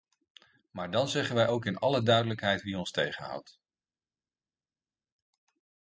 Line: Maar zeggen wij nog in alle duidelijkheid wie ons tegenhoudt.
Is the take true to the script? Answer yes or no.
no